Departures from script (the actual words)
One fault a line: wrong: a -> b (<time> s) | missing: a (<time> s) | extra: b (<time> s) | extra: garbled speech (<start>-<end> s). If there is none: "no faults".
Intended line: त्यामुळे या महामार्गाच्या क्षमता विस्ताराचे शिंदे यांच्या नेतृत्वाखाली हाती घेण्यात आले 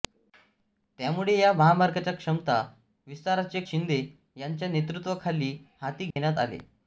no faults